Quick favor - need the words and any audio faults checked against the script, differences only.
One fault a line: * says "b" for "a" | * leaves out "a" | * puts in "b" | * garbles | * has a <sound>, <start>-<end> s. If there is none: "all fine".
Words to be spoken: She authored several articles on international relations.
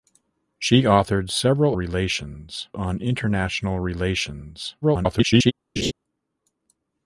* says "relations" for "articles"
* garbles
* has a laugh, 5.8-5.9 s